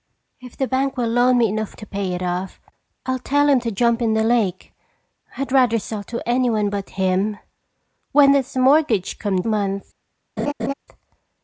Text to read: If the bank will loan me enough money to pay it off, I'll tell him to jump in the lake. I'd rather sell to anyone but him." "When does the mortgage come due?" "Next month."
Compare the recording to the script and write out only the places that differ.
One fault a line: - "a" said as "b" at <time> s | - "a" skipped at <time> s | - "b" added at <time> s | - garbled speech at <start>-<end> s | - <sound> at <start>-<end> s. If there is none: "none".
- "money" skipped at 1.8 s
- "due Next" skipped at 9.4 s
- laugh at 10.4-10.7 s